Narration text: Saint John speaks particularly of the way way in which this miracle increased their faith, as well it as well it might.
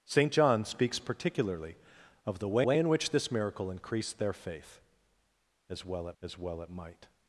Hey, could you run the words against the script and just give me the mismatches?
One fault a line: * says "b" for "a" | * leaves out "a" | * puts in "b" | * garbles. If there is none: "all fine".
all fine